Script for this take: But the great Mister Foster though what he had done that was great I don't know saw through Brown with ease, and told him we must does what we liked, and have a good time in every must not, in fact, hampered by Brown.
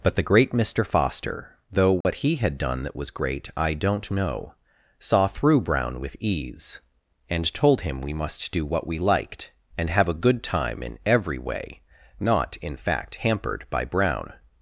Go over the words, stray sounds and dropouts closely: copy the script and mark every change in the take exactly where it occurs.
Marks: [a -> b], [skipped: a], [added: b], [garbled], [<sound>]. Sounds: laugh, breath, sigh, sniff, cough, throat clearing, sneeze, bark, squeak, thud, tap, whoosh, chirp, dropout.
But the great Mister Foster though what [dropout] he had done that was great I don't know saw through Brown with ease, and told him we must [does -> do] what we liked, and have a good time in every [must -> way] not, in fact, hampered by Brown.